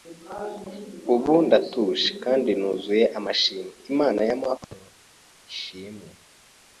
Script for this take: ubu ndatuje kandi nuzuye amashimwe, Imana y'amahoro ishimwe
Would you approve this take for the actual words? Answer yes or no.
yes